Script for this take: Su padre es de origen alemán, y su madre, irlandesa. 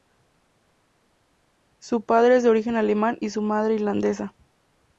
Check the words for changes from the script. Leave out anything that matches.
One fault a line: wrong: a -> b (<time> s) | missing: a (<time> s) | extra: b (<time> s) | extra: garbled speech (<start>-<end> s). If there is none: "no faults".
no faults